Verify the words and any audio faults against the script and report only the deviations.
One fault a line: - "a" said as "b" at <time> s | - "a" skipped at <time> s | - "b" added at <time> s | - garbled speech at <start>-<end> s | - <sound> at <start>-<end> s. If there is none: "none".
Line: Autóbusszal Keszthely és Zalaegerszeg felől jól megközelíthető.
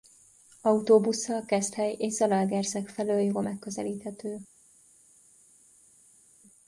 none